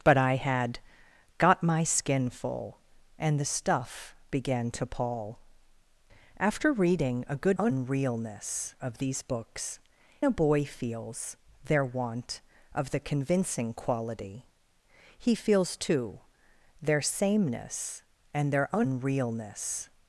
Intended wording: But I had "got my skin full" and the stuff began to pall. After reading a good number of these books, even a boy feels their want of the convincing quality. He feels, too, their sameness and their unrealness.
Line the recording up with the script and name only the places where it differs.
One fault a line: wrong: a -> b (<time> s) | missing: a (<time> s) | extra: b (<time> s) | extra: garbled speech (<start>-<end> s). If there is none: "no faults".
wrong: number -> unrealness (7.6 s)
missing: even (9.8 s)